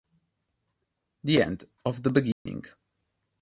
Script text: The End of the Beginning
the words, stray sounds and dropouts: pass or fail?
fail